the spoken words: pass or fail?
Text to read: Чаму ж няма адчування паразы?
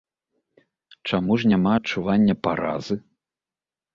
pass